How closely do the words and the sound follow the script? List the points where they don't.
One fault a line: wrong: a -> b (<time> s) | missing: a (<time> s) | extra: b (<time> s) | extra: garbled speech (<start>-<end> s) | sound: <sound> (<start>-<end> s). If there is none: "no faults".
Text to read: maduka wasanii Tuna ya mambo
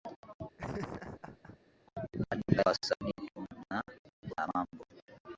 sound: laugh (0.6-1.6 s)